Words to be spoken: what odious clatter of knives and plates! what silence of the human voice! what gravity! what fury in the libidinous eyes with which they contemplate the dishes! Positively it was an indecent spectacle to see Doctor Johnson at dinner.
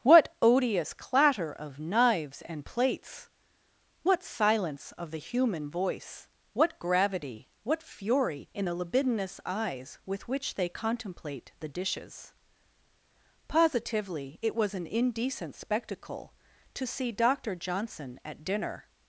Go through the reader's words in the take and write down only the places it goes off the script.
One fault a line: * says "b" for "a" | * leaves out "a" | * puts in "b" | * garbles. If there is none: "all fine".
all fine